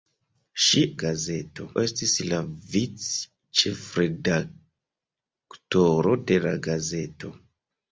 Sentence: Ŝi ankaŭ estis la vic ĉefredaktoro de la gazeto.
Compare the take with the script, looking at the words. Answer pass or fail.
fail